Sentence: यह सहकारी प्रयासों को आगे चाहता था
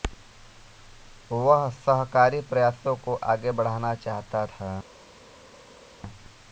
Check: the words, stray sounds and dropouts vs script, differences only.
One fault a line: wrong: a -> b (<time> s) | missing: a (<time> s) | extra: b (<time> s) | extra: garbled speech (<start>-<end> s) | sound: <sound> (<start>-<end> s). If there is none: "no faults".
wrong: यह -> वह (1.3 s)
extra: बढ़ाना (3.5 s)